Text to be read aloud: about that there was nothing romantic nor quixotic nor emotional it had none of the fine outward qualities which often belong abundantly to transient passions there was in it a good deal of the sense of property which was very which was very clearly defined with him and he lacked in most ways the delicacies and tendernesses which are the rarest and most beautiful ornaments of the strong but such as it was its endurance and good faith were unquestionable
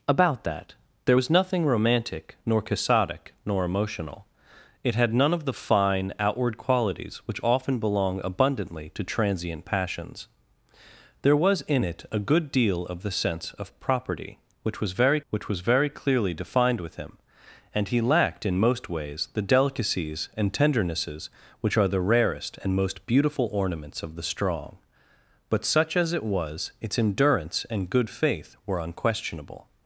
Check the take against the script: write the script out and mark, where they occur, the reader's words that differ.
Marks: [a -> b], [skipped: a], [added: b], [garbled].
about that there was nothing romantic nor quixotic nor emotional it had none of the fine outward qualities which often belong abundantly to transient passions there was in it a good deal of the sense of property which was very which was very clearly defined with him and he lacked in most ways the delicacies and tendernesses which are the rarest and most beautiful ornaments of the strong but such as it was its endurance and good faith were unquestionable